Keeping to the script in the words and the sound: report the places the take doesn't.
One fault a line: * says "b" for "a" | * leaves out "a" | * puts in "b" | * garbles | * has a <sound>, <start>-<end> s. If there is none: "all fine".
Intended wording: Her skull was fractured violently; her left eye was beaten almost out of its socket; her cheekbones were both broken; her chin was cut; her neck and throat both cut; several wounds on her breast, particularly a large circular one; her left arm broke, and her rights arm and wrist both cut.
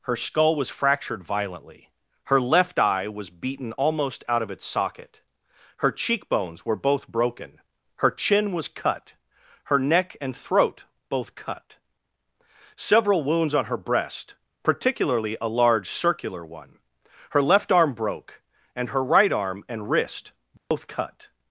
* says "right" for "rights"
* has a dropout, 20.6-20.7 s